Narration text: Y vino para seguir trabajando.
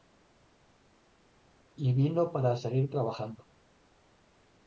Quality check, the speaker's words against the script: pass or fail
pass